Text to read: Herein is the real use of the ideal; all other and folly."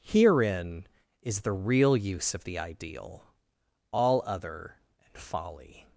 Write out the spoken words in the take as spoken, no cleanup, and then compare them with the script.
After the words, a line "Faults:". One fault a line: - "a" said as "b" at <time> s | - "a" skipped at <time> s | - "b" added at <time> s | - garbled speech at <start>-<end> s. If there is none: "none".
Herein is the real use of the ideal; all other and folly."
Faults:
none